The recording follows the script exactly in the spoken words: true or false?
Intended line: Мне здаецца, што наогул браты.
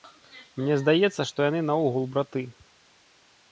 false